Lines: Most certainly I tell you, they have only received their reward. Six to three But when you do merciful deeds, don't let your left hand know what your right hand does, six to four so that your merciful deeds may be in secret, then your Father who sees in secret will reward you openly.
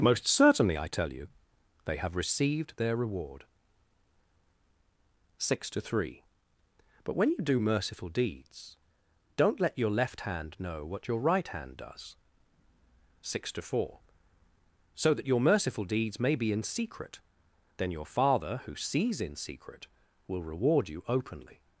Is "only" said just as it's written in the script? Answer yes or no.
no